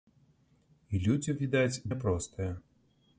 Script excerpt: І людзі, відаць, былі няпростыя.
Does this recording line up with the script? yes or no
no